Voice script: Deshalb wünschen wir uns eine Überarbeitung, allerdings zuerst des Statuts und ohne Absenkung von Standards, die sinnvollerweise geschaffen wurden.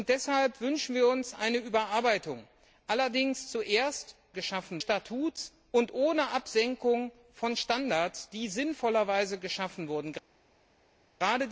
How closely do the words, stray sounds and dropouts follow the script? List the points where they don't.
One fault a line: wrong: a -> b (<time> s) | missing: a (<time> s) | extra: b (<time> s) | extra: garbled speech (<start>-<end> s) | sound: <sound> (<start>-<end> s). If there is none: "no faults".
wrong: des -> geschaffen (4.3 s)